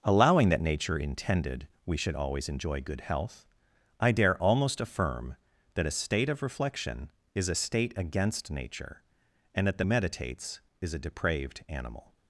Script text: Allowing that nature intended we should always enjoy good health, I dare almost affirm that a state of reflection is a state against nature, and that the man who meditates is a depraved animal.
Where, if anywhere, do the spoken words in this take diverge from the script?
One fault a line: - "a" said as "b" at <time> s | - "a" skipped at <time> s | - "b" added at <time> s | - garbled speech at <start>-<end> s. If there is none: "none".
- "man who" skipped at 9.8 s